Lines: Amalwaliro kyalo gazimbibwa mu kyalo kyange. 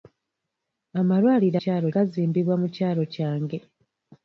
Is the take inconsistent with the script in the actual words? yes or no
no